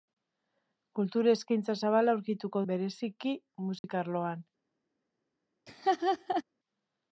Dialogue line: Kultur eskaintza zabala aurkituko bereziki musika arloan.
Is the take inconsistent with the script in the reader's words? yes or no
no